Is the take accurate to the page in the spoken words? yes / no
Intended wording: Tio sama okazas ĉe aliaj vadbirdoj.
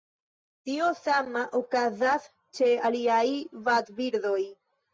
yes